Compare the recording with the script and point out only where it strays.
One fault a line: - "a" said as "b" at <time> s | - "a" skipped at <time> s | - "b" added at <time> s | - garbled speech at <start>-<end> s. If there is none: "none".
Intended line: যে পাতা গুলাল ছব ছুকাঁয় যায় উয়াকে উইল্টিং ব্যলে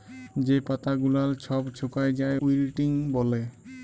- "উয়াকে" skipped at 2.4 s